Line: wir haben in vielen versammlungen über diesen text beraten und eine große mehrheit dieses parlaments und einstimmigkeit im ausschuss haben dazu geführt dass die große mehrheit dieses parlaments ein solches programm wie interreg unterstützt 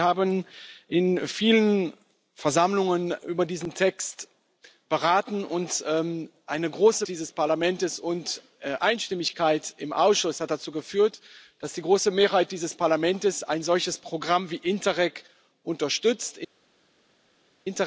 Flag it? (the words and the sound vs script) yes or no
yes